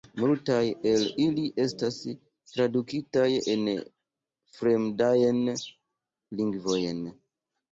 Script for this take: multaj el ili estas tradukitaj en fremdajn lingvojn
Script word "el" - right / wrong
right